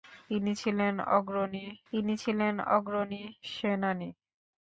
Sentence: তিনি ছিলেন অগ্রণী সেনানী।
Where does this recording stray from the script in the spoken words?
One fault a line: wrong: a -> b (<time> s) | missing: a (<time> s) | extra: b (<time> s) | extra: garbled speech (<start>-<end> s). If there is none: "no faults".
extra: তিনি ছিলেন অগ্রণী (1.9 s)